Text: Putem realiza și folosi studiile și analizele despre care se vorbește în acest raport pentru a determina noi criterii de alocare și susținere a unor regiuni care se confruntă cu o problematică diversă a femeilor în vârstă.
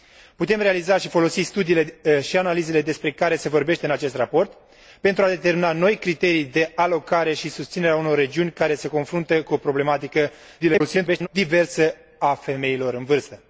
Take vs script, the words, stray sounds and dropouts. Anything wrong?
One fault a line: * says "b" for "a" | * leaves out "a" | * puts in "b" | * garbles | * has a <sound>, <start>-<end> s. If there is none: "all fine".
* garbles